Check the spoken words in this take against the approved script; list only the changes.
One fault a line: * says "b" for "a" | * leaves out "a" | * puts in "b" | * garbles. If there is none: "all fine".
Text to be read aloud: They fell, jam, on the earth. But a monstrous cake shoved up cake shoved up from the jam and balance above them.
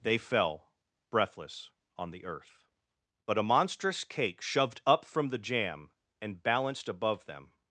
* says "breathless" for "jam"
* leaves out "cake shoved up"
* says "balanced" for "balance"